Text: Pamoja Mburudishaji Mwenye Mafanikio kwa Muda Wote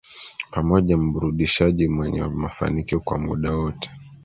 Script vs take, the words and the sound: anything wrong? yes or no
no